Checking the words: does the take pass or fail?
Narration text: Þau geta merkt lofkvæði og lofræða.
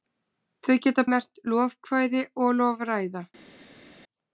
pass